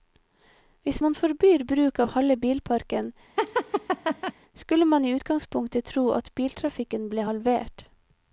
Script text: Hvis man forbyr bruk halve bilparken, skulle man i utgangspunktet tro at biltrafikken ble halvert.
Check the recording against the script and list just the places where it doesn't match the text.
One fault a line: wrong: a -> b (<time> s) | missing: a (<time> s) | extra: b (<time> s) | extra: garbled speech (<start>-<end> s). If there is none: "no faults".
extra: av (2.0 s)